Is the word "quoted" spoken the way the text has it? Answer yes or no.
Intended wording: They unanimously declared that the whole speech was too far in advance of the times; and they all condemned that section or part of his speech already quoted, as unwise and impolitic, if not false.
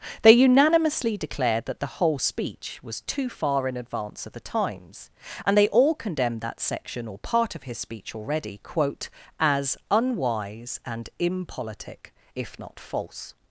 no